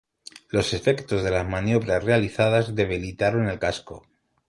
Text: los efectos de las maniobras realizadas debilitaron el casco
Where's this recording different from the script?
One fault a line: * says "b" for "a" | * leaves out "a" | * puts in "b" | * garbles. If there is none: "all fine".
all fine